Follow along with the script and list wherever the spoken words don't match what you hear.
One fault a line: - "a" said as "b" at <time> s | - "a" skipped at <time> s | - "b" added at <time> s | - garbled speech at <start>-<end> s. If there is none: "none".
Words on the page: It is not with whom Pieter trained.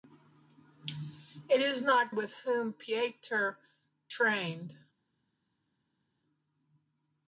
none